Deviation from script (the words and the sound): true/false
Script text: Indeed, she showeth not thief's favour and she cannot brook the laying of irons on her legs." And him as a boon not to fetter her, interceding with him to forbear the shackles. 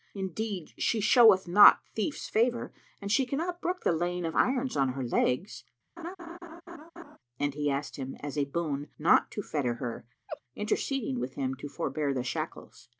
true